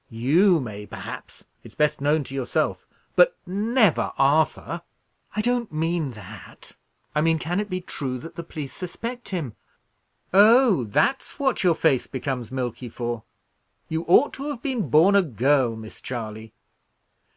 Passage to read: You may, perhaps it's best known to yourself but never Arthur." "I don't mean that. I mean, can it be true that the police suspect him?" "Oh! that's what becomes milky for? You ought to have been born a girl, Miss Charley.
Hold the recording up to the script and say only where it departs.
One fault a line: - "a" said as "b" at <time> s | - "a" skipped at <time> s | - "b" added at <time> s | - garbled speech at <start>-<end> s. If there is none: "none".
- "your face" added at 11.6 s